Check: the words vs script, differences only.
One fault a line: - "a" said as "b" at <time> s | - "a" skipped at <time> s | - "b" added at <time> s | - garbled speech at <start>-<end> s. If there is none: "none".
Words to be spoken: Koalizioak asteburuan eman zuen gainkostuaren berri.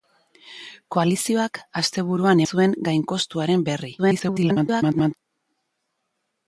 - "eman" skipped at 2.4 s
- garbled speech at 4.0-5.2 s